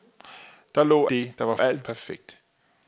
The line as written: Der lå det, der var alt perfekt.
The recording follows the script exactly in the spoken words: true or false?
true